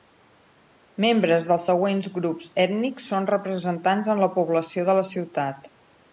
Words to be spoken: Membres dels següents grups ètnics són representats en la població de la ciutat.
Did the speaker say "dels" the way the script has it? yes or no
yes